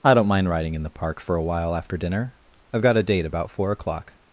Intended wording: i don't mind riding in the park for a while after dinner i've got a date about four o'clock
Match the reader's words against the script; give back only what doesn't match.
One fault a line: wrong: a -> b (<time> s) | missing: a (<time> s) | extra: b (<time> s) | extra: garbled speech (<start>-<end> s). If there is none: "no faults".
no faults